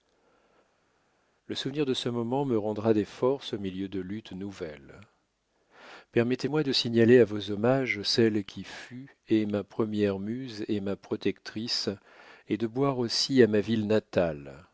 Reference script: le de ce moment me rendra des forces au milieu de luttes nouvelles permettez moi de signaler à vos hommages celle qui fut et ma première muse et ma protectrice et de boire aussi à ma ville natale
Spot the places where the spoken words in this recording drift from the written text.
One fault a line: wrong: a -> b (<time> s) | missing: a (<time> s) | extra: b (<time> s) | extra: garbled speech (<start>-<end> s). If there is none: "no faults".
extra: souvenir (1.5 s)